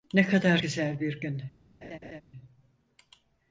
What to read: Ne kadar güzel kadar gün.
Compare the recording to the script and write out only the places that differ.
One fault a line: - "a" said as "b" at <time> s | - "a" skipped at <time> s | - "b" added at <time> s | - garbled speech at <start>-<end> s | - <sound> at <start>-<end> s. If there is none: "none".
- "kadar" said as "bir" at 1.0 s
- laugh at 1.8-2.2 s